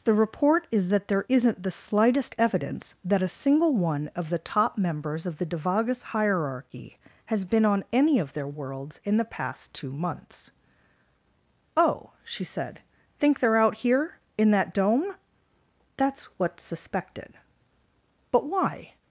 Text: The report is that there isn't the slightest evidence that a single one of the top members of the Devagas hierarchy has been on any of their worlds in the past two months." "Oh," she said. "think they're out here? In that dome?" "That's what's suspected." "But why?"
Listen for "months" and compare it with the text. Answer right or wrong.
right